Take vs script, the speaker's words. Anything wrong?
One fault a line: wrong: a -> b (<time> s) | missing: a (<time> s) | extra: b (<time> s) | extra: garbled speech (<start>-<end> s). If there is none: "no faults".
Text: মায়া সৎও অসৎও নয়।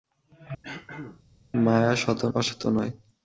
no faults